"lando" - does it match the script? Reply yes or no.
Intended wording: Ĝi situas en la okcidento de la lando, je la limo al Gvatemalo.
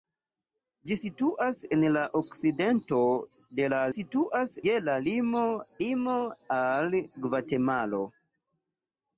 no